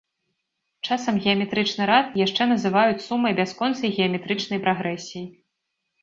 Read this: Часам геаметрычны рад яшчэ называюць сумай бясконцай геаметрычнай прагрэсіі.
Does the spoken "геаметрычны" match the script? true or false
true